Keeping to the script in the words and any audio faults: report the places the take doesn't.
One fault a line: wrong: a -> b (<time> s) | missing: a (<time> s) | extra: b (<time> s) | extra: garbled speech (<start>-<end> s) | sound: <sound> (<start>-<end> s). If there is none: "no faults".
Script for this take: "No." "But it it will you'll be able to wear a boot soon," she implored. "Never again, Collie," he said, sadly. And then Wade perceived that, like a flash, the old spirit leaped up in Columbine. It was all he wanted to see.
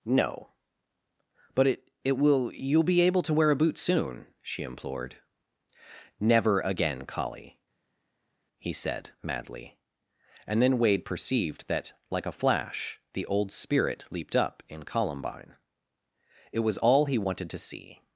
wrong: sadly -> madly (9.2 s)